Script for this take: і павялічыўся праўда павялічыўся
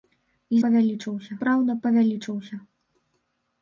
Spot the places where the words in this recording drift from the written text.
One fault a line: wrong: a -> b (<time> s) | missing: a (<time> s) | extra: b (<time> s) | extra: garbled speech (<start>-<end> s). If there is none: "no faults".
no faults